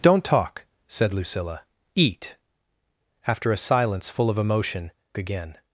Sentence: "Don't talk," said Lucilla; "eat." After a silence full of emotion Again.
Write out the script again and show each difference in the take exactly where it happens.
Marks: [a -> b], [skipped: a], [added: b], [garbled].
"Don't talk," said Lucilla; "eat." After a silence full of emotion Again.